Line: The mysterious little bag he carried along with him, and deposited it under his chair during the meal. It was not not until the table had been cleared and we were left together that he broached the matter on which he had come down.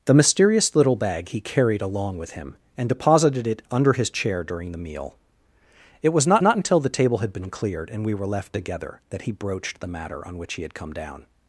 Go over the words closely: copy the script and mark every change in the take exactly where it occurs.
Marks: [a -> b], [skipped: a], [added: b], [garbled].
The mysterious little bag he carried along with him, and deposited it under his chair during the meal. It was not not until the table had been cleared and we were left together that he broached the matter on which he had come down.